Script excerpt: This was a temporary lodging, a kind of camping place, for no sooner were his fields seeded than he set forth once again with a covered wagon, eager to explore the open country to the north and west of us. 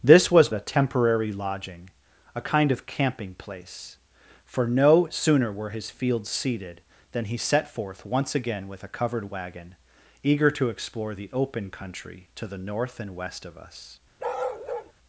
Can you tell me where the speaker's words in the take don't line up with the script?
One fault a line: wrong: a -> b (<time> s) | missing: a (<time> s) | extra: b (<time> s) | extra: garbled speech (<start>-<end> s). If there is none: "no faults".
no faults